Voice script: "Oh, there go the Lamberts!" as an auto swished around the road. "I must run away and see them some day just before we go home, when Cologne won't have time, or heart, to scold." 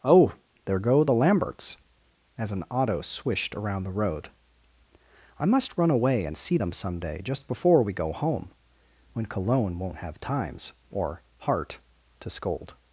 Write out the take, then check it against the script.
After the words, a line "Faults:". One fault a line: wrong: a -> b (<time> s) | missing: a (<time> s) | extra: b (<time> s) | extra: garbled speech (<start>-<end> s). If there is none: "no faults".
"Oh, there go the Lamberts!" as an auto swished around the road. "I must run away and see them some day just before we go home, when Cologne won't have times, or heart, to scold."
Faults:
wrong: time -> times (10.2 s)